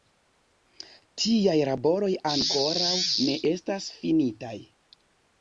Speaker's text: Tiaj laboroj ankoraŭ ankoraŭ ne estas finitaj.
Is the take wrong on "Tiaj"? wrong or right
right